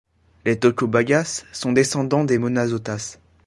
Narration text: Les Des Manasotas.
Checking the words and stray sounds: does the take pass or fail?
fail